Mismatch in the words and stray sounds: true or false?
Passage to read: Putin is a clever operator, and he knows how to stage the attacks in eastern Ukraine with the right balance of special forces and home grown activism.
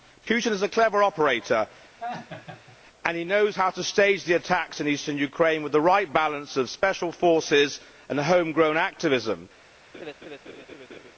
true